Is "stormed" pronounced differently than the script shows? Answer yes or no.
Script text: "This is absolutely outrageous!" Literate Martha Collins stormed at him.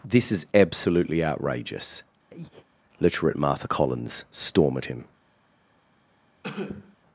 yes